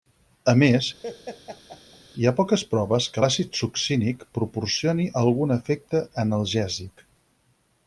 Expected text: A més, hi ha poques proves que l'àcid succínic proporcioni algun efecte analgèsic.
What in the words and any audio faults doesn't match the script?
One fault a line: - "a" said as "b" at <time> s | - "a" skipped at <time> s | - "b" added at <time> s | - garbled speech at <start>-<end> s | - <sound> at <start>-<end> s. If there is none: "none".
- laugh at 1.0-2.0 s